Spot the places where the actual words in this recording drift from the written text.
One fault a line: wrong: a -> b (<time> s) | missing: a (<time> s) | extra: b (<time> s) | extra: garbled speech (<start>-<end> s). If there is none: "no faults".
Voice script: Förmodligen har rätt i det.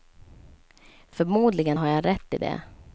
extra: jag (1.9 s)